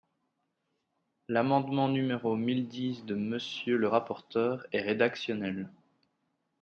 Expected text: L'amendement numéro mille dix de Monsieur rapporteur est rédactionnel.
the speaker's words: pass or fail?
fail